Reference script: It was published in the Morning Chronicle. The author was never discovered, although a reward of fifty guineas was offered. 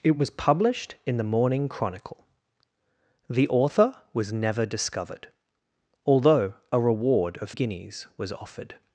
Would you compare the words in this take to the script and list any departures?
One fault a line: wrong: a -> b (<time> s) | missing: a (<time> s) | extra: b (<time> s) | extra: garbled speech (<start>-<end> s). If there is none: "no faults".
missing: fifty (7.5 s)